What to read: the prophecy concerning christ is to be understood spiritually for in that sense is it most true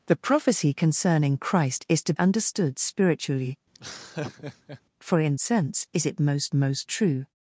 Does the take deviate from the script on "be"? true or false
true